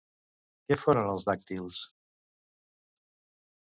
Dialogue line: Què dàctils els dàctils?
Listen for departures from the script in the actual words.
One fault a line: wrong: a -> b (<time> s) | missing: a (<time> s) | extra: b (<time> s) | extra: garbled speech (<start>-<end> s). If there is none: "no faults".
wrong: dàctils -> foren (0.8 s)